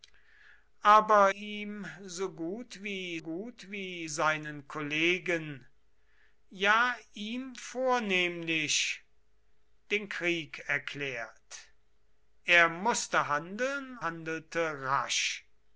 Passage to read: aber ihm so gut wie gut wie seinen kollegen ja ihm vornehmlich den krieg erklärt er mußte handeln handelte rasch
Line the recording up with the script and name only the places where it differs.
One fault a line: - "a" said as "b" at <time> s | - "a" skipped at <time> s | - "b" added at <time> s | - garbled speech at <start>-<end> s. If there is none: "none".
none